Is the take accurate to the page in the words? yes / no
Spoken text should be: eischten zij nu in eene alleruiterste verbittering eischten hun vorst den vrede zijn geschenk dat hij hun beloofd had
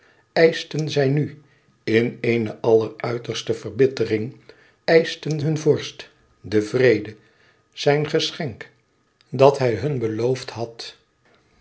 yes